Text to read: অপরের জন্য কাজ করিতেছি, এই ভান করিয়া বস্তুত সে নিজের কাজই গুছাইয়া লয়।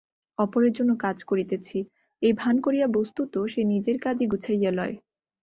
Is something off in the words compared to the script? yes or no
no